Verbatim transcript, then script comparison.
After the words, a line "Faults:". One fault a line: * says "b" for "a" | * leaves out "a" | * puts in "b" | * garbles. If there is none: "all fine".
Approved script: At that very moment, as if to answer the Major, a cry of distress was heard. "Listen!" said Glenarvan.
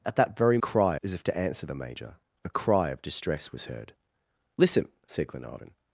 At that very cry, as if to answer the Major, a cry of distress was heard. "Listen!" said Glenarvan.
Faults:
* says "cry" for "moment"